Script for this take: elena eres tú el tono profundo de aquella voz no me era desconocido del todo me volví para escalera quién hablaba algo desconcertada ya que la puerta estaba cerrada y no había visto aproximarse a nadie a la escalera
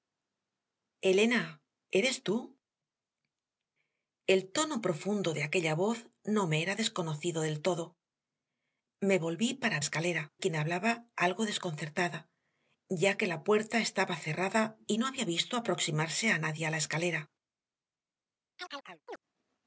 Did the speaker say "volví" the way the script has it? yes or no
yes